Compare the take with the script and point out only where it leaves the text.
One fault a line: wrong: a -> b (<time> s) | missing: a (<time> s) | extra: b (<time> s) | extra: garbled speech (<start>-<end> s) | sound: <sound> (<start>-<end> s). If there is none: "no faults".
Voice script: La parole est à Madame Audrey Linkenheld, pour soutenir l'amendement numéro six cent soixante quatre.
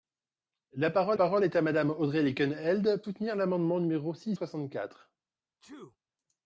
extra: parole (1.1 s)
missing: pour (3.0 s)
missing: cent (4.4 s)
sound: sneeze (5.6-6.0 s)